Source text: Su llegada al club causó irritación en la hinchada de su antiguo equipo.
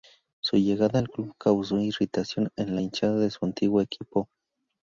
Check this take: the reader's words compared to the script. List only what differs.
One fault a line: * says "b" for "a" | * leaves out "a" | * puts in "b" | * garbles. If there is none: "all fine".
all fine